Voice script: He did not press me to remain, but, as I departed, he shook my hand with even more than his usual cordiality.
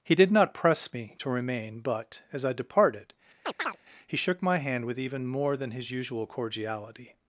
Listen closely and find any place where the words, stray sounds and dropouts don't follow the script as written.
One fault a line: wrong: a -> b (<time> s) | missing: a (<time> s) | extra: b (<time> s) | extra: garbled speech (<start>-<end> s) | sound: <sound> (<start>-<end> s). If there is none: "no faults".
sound: chirp (3.4-3.8 s)